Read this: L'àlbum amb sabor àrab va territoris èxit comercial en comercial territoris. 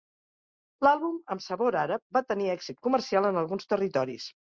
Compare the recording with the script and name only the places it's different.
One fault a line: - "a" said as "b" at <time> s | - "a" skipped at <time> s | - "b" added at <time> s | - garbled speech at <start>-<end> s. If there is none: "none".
- "territoris" said as "tenir" at 2.3 s
- "comercial" said as "alguns" at 3.4 s